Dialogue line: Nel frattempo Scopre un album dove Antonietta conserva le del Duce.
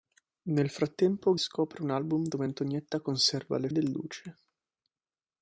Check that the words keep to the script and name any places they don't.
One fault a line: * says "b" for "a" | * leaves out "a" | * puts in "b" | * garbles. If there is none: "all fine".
all fine